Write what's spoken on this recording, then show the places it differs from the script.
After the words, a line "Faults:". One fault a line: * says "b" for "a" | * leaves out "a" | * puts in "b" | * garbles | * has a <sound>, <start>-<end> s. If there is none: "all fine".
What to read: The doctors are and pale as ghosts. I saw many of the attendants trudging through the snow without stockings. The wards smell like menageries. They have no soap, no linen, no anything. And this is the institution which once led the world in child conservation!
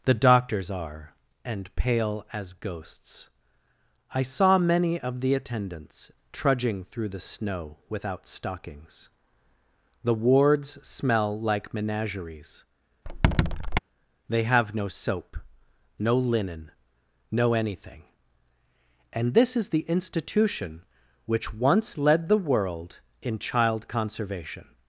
The doctors are and pale as ghosts. I saw many of the attendants trudging through the snow without stockings. The wards smell like menageries. They have no soap, no linen, no anything. And this is the institution which once led the world in child conservation!
Faults:
* has a squeak, 13.1-13.8 s